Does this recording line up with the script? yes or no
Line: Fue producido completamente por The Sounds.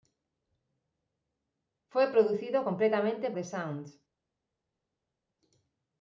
no